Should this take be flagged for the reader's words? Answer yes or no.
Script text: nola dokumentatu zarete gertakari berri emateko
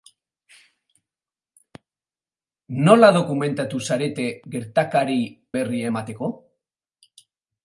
no